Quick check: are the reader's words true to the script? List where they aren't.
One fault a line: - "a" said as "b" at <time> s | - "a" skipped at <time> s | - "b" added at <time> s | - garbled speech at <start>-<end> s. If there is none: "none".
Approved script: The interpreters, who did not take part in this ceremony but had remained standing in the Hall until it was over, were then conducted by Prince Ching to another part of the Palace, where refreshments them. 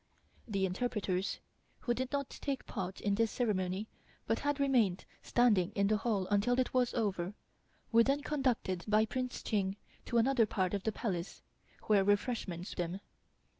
none